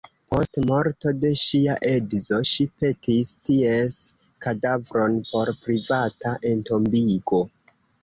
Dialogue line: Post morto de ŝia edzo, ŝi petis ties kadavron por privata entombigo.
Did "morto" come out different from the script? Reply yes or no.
no